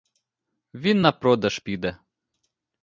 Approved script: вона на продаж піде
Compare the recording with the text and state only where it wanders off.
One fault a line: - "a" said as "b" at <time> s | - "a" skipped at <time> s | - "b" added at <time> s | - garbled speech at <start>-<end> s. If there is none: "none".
- "вона" said as "він" at 0.7 s